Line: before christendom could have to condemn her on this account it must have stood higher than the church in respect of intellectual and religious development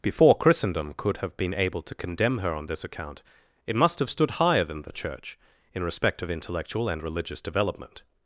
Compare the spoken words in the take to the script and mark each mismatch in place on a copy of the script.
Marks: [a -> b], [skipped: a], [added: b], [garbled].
before christendom could have [added: been able] to condemn her on this account it must have stood higher than the church in respect of intellectual and religious development